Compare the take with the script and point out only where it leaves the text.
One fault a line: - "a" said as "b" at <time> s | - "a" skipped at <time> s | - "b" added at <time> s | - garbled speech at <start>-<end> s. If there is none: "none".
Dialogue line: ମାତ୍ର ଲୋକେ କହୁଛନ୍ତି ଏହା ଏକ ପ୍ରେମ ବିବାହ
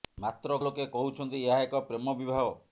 none